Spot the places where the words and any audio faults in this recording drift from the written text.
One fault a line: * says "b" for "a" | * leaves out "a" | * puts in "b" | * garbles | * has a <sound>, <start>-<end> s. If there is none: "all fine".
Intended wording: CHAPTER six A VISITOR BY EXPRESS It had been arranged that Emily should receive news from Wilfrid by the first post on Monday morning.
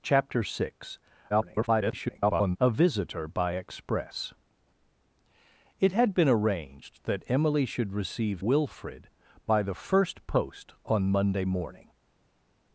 * garbles
* leaves out "news from"